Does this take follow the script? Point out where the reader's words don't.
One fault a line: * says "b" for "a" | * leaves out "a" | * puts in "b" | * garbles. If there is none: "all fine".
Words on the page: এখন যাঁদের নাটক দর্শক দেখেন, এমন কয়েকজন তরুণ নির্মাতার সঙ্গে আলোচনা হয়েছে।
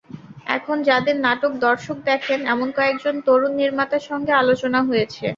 all fine